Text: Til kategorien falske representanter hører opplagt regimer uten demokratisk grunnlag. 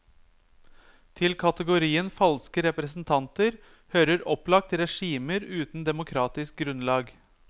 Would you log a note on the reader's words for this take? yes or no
no